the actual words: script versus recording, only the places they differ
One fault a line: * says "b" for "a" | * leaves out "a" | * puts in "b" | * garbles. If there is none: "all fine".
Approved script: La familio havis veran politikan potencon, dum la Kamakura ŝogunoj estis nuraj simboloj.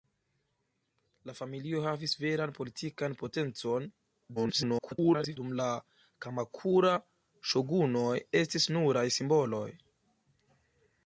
* garbles